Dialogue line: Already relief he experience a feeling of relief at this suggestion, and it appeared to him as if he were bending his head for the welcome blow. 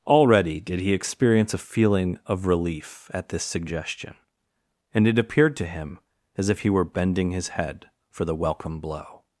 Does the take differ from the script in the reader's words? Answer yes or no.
yes